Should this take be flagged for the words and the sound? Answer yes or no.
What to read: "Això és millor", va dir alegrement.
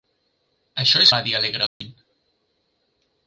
yes